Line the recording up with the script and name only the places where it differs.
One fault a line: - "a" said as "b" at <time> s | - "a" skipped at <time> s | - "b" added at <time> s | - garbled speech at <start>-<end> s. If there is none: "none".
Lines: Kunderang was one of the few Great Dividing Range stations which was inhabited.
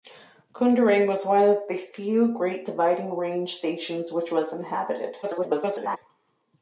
- garbled speech at 5.2-6.0 s